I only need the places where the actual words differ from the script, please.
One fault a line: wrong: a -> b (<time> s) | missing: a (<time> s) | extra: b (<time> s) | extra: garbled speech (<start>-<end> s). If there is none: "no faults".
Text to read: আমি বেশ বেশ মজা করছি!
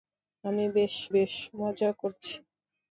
no faults